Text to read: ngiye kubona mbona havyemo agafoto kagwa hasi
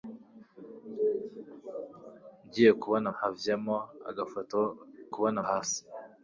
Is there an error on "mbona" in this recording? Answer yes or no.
yes